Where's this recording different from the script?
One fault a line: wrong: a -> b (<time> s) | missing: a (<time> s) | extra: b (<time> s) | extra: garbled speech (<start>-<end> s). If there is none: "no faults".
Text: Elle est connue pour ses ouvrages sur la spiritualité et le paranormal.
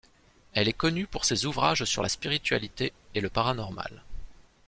no faults